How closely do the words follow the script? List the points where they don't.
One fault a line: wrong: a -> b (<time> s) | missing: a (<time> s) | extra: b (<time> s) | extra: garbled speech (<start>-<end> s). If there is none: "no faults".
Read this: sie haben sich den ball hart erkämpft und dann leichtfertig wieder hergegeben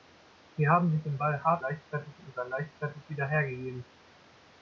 wrong: erkämpft -> leichtfertig (1.6 s)